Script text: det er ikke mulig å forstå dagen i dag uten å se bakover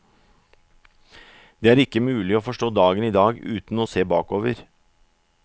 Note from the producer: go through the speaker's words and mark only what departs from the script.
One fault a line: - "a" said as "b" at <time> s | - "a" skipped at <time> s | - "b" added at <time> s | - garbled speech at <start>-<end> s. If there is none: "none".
none